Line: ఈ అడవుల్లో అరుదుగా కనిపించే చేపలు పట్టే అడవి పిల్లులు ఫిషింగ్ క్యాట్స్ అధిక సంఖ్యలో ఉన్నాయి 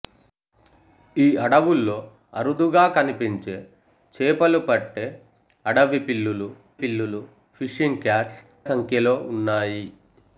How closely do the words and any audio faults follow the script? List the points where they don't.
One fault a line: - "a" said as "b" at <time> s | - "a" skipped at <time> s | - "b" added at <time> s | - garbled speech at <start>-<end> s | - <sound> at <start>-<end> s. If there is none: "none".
- "పిల్లులు" added at 6.8 s
- "అధిక" skipped at 8.4 s